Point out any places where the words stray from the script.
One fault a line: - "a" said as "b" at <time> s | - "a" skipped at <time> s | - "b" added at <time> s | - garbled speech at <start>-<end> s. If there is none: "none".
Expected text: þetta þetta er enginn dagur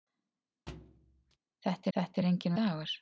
none